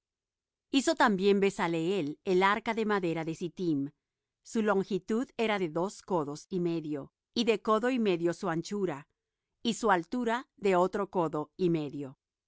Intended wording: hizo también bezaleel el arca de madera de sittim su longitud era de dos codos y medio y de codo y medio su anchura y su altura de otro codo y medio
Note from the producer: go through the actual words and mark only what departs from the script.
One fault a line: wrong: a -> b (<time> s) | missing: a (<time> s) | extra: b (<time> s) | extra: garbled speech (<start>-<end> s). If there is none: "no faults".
no faults